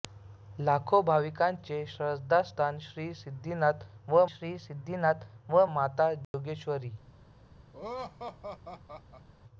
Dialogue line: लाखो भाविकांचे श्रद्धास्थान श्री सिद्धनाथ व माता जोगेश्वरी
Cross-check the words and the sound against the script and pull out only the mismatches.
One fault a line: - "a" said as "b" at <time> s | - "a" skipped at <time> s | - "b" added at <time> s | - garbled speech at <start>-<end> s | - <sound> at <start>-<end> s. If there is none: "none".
- "श्री सिद्धनाथ व" added at 4.3 s
- dropout at 6.2-6.3 s
- laugh at 7.7-9.3 s